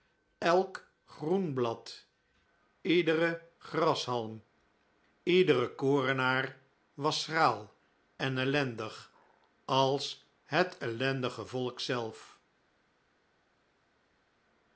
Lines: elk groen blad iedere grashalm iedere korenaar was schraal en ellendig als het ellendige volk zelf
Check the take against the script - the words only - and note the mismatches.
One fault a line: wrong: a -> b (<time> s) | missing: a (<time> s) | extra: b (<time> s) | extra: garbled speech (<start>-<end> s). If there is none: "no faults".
no faults